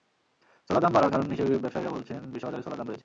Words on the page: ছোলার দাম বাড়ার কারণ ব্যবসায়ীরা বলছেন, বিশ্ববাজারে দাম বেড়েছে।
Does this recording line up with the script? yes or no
no